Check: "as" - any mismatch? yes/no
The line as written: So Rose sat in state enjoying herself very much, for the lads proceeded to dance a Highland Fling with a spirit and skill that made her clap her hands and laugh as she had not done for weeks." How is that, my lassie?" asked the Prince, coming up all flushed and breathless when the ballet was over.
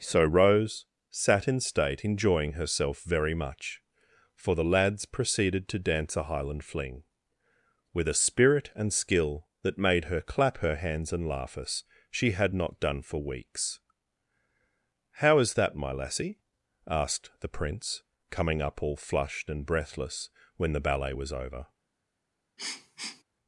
yes